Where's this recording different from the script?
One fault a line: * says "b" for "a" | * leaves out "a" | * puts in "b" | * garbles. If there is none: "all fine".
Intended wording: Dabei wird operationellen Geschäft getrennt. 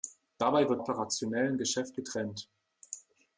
all fine